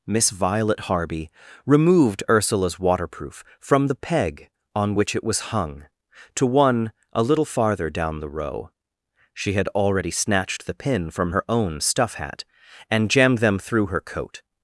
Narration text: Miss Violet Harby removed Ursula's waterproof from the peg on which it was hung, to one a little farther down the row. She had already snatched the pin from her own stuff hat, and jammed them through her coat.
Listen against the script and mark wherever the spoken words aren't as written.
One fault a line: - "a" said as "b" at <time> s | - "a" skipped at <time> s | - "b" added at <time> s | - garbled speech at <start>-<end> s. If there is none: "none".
none